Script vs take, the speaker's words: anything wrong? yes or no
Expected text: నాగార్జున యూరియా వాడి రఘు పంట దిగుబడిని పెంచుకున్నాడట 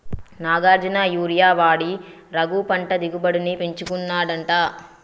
no